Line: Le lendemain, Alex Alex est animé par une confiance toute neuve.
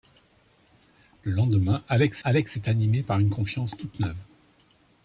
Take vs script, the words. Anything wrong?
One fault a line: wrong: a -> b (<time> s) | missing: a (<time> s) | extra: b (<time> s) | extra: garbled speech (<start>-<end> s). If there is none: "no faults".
no faults